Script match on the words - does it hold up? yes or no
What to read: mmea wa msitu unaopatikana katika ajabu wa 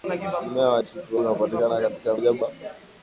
yes